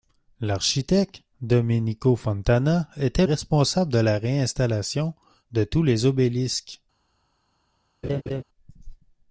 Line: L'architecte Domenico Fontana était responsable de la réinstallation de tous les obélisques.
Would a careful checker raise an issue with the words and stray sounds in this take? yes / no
yes